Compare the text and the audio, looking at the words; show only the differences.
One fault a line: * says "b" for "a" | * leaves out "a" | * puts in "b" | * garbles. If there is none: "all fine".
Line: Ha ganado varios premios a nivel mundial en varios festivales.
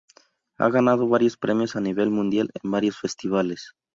all fine